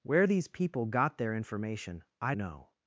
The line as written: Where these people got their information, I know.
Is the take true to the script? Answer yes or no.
yes